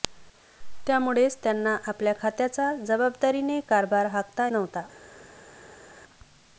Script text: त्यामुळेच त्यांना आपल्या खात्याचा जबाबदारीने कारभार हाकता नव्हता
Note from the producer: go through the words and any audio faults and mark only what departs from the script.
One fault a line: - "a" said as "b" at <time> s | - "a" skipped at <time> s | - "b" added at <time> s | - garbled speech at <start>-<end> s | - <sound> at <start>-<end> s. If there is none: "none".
none